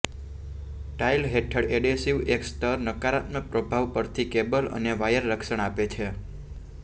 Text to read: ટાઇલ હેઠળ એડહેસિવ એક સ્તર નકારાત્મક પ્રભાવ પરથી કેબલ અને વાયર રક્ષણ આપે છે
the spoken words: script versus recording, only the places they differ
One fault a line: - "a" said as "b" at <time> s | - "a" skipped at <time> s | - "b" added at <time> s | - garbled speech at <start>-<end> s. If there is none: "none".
none